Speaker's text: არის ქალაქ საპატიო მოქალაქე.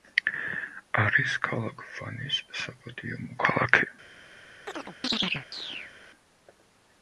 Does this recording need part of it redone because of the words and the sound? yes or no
yes